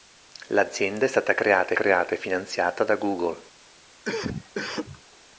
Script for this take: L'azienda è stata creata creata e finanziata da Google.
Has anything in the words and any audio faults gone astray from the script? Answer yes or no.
yes